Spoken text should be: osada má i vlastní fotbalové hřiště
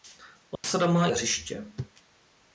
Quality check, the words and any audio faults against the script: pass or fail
fail